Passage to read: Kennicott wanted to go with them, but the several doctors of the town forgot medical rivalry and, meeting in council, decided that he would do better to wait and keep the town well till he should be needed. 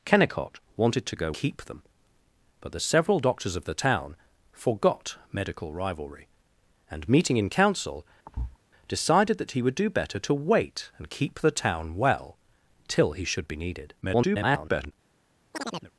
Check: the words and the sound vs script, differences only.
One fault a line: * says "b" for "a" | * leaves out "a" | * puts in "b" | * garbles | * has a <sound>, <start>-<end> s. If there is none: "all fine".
* says "keep" for "with"
* has a thud, 8.3-8.6 s
* garbles
* has a chirp, 15.5-15.9 s